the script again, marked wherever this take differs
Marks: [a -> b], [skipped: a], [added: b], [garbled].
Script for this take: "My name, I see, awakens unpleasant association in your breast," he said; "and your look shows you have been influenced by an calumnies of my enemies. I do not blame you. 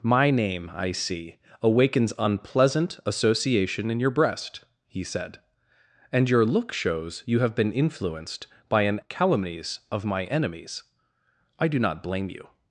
"My name, I see, awakens unpleasant association in your breast," he said; "and your look shows you have been influenced by an calumnies of my enemies. I do not blame you.